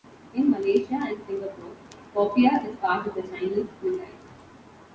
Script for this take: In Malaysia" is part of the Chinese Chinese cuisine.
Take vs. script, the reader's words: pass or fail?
fail